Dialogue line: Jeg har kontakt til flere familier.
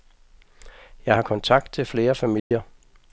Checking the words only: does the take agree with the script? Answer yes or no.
yes